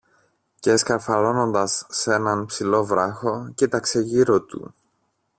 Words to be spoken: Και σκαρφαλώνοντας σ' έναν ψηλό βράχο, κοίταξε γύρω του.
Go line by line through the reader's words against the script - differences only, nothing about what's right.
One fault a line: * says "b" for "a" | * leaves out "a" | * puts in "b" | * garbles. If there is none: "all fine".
all fine